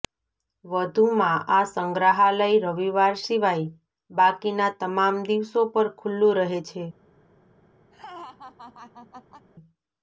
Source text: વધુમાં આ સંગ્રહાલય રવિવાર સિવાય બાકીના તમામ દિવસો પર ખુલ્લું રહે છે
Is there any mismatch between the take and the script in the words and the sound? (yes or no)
yes